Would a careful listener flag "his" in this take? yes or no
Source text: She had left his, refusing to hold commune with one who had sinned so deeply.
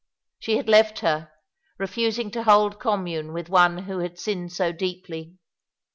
yes